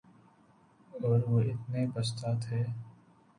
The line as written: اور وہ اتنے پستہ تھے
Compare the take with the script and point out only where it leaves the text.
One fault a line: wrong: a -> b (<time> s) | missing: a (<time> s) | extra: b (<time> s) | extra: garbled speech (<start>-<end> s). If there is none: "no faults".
no faults